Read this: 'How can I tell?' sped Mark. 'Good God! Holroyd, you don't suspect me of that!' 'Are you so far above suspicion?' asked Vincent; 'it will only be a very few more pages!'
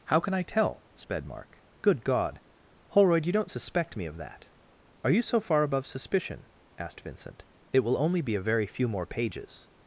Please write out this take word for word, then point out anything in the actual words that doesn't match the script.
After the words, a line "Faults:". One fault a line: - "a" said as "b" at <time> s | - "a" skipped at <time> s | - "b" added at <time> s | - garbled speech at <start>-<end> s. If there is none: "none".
'How can I tell?' sped Mark. 'Good God! Holroyd, you don't suspect me of that!' 'Are you so far above suspicion?' asked Vincent; 'it will only be a very few more pages!'
Faults:
none